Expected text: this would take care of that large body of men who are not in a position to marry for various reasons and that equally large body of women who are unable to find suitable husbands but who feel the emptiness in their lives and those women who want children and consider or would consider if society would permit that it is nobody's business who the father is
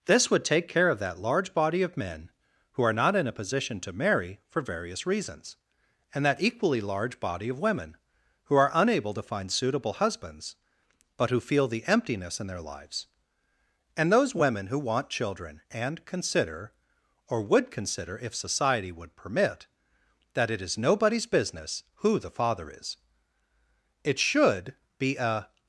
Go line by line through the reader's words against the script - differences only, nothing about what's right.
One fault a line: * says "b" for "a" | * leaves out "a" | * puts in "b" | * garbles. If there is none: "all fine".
* puts in "it should be a"